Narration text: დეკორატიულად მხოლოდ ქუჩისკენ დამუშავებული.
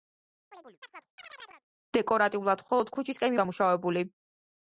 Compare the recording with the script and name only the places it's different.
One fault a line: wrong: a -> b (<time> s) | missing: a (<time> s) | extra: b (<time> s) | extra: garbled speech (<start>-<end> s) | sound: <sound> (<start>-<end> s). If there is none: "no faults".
sound: chirp (0.5-1.6 s)